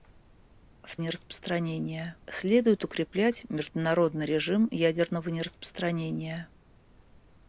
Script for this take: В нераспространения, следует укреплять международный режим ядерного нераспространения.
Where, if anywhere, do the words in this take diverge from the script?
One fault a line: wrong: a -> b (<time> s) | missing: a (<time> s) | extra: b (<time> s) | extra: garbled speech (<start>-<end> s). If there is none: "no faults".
no faults